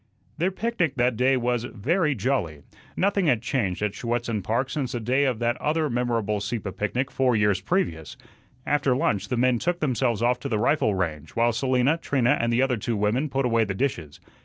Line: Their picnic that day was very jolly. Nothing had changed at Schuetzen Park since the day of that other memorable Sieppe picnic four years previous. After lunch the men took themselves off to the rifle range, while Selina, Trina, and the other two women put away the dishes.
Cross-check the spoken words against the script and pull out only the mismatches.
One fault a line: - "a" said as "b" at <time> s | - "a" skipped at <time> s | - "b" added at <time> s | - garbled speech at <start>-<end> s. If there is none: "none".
none